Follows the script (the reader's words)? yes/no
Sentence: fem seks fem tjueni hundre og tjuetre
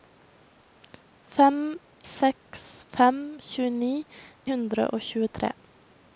yes